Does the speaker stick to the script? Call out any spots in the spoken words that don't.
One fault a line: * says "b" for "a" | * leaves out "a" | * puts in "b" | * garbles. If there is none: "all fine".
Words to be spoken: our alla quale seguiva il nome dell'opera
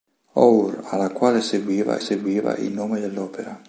* puts in "seguiva"